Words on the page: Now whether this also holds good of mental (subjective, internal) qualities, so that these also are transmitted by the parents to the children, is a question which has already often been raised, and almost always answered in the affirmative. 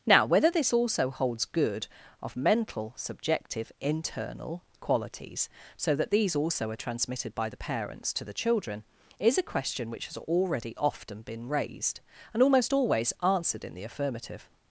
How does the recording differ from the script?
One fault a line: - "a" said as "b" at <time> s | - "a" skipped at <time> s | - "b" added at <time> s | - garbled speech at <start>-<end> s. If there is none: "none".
none